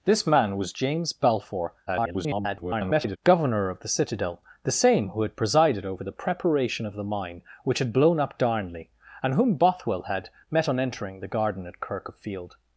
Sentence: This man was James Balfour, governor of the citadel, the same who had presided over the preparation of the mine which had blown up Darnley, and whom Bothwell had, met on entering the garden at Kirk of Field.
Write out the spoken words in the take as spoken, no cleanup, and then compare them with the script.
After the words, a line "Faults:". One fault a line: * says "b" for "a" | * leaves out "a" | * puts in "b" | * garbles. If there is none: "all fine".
This man was James Balfour, [garbled] governor of the citadel, the same who had presided over the preparation of the mine which had blown up Darnley, and whom Bothwell had, met on entering the garden at Kirk of Field.
Faults:
* garbles